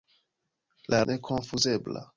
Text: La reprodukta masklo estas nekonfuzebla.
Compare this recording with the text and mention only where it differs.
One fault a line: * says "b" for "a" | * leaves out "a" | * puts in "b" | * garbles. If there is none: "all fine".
* leaves out "reprodukta masklo estas"